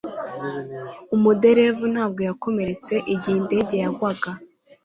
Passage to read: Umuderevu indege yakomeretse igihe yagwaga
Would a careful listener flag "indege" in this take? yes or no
yes